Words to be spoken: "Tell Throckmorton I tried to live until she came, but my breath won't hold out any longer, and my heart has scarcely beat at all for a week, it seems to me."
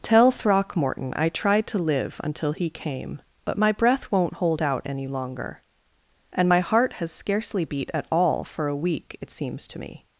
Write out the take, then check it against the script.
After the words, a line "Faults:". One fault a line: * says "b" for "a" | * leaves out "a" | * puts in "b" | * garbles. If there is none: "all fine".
"Tell Throckmorton I tried to live until he came, but my breath won't hold out any longer, and my heart has scarcely beat at all for a week, it seems to me."
Faults:
* says "he" for "she"